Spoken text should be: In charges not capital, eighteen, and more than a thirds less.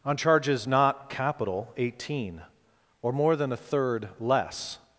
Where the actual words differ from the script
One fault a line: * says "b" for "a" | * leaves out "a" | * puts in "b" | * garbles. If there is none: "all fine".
* says "On" for "In"
* says "or" for "and"
* says "third" for "thirds"